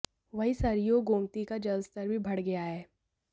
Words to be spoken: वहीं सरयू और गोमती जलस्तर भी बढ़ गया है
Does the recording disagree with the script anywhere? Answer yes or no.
yes